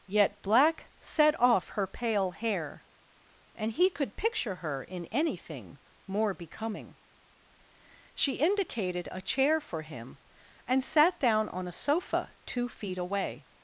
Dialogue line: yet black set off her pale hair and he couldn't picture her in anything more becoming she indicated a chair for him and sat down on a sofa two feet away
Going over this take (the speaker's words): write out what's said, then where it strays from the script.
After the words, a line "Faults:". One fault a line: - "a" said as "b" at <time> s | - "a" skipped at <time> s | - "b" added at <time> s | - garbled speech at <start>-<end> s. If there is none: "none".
yet black set off her pale hair and he could picture her in anything more becoming she indicated a chair for him and sat down on a sofa two feet away
Faults:
- "couldn't" said as "could" at 3.9 s